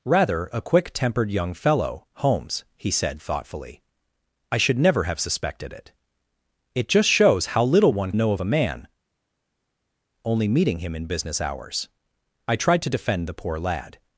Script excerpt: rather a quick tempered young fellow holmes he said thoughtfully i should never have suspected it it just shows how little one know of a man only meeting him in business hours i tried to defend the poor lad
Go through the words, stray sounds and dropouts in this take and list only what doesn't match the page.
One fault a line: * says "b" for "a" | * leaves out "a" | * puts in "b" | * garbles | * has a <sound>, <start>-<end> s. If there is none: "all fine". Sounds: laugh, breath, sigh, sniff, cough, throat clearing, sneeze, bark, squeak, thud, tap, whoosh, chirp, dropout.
all fine